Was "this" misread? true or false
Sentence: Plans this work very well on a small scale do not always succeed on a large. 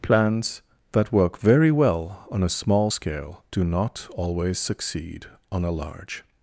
true